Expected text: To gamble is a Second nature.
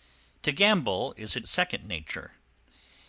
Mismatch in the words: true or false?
false